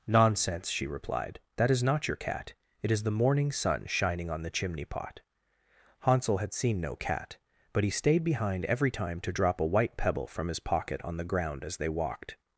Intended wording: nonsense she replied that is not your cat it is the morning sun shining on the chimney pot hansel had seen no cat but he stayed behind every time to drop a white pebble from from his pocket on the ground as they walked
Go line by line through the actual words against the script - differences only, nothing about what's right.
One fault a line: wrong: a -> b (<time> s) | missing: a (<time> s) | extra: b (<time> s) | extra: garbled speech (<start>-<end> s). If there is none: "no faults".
missing: from (10.5 s)